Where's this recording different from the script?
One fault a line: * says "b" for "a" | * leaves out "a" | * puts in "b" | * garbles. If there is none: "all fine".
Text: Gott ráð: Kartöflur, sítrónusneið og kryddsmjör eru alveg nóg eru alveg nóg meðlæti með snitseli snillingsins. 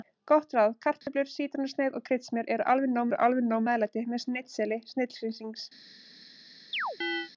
all fine